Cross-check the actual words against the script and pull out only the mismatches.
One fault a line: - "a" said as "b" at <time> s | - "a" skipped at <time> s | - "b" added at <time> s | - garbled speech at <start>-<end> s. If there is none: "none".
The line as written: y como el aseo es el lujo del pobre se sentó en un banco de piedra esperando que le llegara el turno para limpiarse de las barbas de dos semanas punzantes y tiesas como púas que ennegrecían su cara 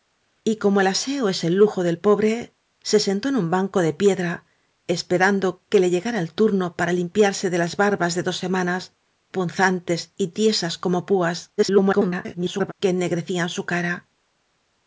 - garbled speech at 11.6-12.7 s